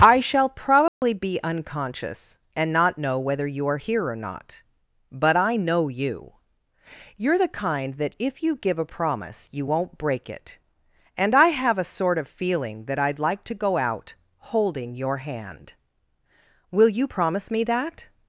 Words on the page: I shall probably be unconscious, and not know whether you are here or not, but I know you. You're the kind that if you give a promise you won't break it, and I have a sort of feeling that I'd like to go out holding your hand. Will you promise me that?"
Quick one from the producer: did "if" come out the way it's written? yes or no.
yes